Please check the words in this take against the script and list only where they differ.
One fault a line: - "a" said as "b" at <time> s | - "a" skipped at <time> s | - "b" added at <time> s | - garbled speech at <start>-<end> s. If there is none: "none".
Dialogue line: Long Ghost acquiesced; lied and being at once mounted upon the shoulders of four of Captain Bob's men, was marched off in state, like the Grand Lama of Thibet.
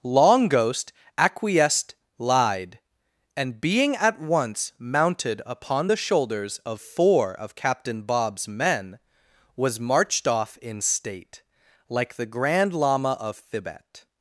none